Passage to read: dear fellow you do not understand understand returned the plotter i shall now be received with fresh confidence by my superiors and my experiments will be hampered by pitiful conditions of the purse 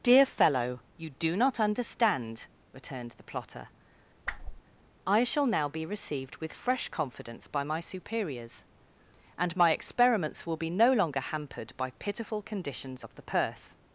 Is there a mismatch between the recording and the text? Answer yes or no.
yes